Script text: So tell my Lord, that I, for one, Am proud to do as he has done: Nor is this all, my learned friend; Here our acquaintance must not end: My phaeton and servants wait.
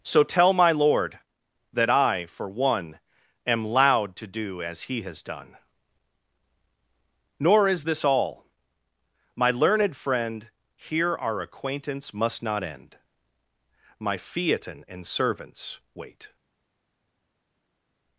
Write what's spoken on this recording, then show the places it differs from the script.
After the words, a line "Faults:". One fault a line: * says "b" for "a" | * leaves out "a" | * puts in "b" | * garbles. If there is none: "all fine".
So tell my Lord, that I, for one, Am loud to do as he has done: Nor is this all, my learned friend; Here our acquaintance must not end: My phaeton and servants wait.
Faults:
* says "loud" for "proud"